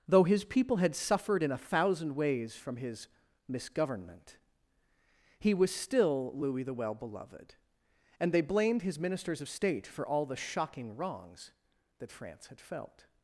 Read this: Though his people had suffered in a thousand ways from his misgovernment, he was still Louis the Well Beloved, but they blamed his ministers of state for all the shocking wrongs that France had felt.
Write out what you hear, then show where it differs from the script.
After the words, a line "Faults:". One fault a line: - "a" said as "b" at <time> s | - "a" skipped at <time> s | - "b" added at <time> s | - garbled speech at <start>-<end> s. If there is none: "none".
Though his people had suffered in a thousand ways from his misgovernment, he was still Louis the Well Beloved, and they blamed his ministers of state for all the shocking wrongs that France had felt.
Faults:
- "but" said as "and" at 8.2 s